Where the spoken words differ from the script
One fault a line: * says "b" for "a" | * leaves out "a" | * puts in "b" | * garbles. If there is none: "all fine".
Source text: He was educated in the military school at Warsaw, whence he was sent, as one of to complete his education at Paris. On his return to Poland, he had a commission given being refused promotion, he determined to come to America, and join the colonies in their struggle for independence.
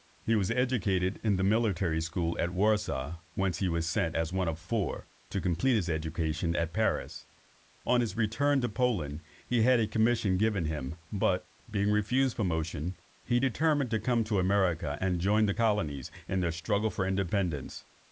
* puts in "four"
* puts in "him but"